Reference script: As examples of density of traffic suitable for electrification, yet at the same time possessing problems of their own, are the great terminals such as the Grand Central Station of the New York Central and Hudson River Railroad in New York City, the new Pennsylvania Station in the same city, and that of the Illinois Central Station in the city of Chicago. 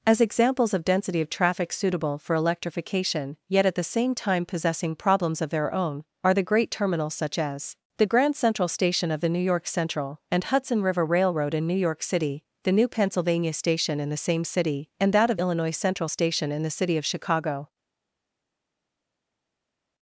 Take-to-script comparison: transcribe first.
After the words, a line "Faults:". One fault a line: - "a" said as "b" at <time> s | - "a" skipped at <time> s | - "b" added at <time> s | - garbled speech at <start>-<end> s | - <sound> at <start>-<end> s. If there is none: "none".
As examples of density of traffic suitable for electrification, yet at the same time possessing problems of their own, are the great terminals such as the Grand Central Station of the New York Central and Hudson River Railroad in New York City, the new Pennsylvania Station in the same city, and that of Illinois Central Station in the city of Chicago.
Faults:
- "the" skipped at 15.4 s